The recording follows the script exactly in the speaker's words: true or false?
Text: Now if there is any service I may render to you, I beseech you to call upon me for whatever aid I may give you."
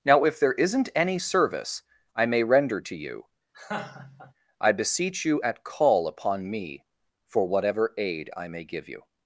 false